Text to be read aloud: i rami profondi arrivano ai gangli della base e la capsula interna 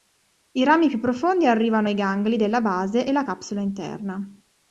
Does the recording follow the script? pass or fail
fail